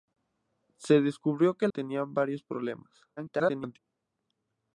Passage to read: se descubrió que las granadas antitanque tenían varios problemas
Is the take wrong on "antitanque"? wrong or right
wrong